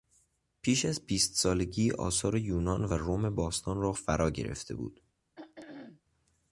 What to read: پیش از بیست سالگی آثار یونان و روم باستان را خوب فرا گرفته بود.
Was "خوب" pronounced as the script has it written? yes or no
no